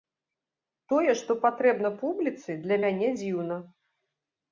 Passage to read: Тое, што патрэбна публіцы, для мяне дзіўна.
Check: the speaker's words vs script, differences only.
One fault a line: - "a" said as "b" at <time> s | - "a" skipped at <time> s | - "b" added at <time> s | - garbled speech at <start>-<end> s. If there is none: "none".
none